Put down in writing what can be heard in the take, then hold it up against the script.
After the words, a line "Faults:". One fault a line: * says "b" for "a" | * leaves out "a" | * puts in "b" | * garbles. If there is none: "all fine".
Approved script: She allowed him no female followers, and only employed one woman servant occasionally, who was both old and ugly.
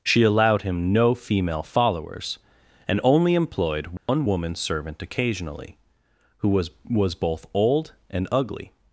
She allowed him no female followers, and only employed one woman servant occasionally, who was was both old and ugly.
Faults:
* puts in "was"